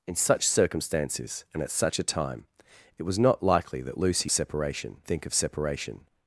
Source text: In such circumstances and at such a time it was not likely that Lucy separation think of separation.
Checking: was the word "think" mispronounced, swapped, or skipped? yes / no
no